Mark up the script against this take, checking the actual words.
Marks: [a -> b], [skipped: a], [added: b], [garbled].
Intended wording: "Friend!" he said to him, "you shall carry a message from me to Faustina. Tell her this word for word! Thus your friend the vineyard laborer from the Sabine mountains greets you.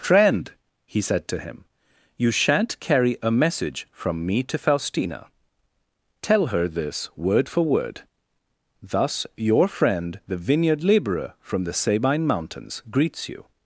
"Friend!" he said to him, "you [shall -> shan't] carry a message from me to Faustina. Tell her this word for word! Thus your friend the vineyard laborer from the Sabine mountains greets you.